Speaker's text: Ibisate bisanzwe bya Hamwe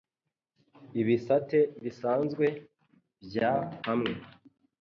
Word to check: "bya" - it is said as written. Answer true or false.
true